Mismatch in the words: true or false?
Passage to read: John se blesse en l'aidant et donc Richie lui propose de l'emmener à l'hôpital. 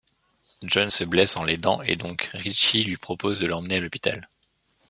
false